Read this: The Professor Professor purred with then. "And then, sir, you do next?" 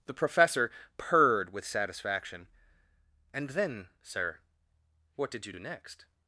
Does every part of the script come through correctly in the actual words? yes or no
no